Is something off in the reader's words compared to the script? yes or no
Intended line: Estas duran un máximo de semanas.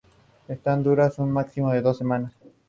yes